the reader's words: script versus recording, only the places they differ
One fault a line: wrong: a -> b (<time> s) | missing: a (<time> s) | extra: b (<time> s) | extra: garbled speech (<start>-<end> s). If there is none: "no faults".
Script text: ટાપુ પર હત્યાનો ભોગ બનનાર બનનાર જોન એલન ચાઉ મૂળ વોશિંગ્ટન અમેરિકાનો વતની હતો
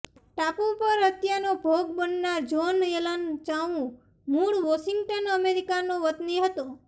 missing: બનનાર (2.4 s)